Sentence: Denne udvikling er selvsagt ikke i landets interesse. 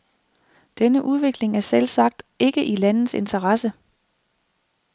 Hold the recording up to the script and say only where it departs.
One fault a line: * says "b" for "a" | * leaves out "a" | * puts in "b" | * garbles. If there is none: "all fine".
all fine